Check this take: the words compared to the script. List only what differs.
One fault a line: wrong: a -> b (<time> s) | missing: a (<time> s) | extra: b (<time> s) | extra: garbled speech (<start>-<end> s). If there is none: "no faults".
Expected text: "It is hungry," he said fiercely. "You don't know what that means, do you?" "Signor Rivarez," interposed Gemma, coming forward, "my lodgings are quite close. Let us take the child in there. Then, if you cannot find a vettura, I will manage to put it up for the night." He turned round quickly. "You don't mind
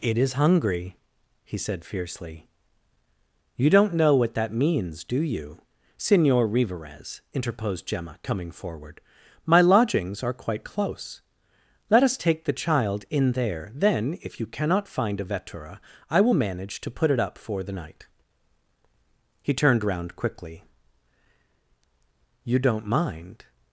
no faults